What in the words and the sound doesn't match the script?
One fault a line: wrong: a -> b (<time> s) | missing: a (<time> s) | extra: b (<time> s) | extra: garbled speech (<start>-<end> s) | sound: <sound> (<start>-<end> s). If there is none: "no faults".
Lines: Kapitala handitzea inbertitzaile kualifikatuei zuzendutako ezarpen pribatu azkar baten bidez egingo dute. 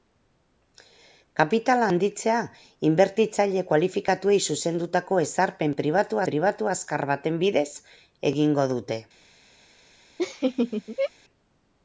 extra: pribatu (6.3 s)
sound: laugh (10.2-11.1 s)